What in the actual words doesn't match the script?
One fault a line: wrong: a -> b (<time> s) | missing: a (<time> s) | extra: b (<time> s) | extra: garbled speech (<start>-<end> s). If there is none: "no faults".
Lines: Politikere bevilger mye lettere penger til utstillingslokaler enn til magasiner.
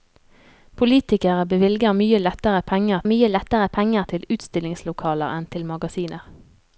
extra: mye lettere penger (3.1 s)